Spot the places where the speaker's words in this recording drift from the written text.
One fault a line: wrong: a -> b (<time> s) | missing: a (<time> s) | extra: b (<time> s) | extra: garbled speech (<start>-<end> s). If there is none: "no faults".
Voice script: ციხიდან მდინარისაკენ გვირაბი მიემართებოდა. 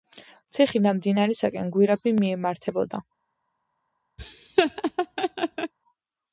no faults